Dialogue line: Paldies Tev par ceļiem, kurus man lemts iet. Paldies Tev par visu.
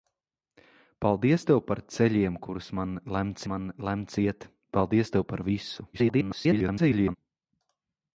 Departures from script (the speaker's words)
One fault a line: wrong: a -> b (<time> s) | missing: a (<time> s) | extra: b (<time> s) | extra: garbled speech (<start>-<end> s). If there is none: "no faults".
extra: man lemts (3.5 s)
extra: garbled speech (5.9-7.2 s)